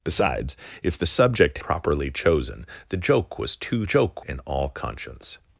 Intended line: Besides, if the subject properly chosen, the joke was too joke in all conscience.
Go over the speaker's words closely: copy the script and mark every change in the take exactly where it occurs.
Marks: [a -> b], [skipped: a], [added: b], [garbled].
Besides, if the subject properly chosen, the joke was too joke in all conscience.